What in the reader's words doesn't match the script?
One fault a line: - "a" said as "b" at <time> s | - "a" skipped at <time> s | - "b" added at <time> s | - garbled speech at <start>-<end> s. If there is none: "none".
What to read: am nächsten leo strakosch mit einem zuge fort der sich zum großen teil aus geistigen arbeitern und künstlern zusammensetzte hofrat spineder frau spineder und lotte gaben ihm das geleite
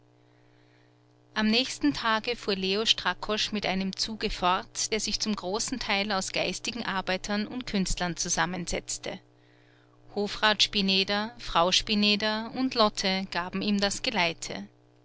- "tage fuhr" added at 1.9 s